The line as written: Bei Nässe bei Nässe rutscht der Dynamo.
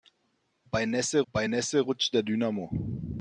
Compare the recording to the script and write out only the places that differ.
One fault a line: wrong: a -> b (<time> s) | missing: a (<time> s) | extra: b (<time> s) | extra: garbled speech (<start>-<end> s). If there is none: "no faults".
no faults